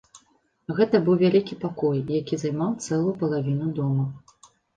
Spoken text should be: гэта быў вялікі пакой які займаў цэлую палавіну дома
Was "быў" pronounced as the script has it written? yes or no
yes